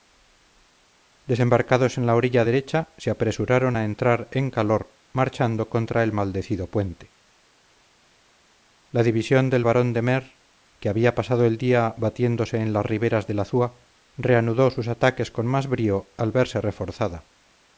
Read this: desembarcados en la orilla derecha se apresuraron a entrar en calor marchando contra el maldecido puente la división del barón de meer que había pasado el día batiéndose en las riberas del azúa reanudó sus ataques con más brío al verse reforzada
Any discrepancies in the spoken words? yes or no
no